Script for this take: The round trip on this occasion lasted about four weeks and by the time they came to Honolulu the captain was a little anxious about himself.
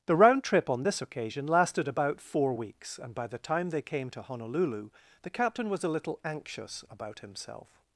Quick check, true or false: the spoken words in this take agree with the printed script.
true